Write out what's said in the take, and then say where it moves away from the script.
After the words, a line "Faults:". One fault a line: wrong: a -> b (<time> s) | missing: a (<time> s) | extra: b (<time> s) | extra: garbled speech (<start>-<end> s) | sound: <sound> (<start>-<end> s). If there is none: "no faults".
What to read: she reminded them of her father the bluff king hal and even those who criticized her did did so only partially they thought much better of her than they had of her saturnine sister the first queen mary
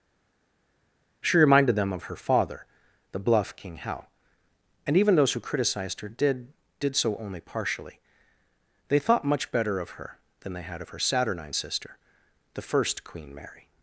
she reminded them of her father the bluff king hal and even those who criticized her did did so only partially they thought much better of her than they had of her saturnine sister the first queen mary
Faults:
no faults